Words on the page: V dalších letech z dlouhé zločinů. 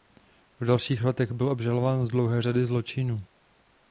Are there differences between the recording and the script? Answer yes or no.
yes